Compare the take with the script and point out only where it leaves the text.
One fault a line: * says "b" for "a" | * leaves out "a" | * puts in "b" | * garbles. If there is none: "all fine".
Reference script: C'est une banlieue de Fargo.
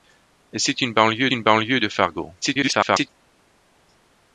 * puts in "une banlieue"
* garbles